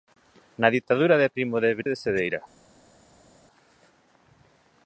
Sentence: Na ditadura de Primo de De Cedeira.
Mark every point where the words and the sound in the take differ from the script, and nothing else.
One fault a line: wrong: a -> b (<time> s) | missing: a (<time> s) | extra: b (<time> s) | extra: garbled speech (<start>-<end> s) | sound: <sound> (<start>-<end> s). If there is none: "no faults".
no faults